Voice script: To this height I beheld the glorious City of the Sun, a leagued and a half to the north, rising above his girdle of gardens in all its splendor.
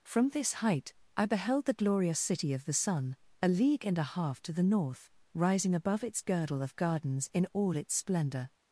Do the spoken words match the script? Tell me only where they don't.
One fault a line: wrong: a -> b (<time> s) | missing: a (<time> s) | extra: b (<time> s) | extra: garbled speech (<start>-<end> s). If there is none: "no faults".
wrong: To -> From (0.0 s)
wrong: leagued -> league (3.5 s)
wrong: his -> its (6.0 s)